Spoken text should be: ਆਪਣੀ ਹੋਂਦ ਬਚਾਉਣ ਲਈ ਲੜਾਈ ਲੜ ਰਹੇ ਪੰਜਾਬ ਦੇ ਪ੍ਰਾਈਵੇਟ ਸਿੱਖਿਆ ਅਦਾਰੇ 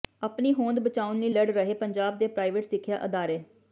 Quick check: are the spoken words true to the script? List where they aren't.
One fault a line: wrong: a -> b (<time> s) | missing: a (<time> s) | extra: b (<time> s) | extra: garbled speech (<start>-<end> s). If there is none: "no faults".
missing: ਲੜਾਈ (1.3 s)